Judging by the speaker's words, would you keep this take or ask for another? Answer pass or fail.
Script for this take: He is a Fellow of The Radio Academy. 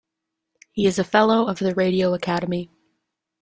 pass